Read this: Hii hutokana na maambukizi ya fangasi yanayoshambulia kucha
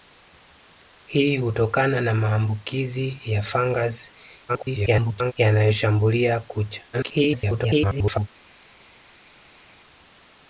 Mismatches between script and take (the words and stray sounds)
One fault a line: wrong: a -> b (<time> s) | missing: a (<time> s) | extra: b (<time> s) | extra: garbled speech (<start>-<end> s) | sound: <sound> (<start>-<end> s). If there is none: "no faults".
extra: garbled speech (4.5-5.3 s)
extra: garbled speech (6.9-8.3 s)